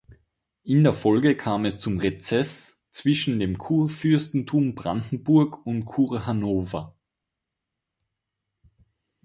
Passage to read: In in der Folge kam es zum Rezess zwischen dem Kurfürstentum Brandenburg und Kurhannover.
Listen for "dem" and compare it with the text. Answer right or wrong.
right